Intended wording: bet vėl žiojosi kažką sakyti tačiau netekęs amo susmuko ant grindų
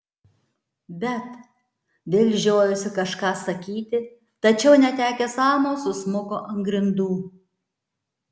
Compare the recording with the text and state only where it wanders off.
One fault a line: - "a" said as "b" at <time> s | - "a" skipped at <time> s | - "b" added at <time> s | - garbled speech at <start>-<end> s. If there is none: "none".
none